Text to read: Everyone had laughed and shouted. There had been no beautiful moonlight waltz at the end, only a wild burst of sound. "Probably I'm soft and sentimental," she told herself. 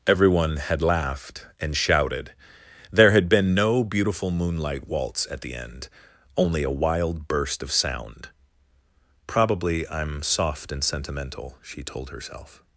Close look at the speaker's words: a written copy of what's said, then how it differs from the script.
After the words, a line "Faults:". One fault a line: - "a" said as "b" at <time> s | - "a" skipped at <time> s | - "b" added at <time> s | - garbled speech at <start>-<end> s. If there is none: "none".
Everyone had laughed and shouted. There had been no beautiful moonlight waltz at the end, only a wild burst of sound. "Probably I'm soft and sentimental," she told herself.
Faults:
none